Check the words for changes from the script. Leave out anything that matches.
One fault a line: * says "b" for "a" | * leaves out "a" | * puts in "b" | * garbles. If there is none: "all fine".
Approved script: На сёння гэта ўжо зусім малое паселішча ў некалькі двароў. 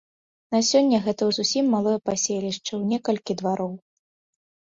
* leaves out "ўжо"